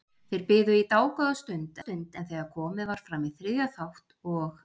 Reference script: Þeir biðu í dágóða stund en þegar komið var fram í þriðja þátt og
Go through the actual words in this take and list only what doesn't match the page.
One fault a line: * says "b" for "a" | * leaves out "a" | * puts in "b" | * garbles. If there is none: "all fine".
* puts in "stund"